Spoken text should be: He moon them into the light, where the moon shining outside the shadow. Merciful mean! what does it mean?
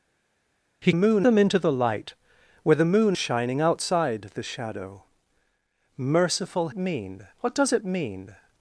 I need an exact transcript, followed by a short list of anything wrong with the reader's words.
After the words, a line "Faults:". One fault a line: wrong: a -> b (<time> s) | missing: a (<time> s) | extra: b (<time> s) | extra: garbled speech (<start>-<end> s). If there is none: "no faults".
He moon them into the light, where the moon shining outside the shadow. Merciful mean! what does it mean?
Faults:
no faults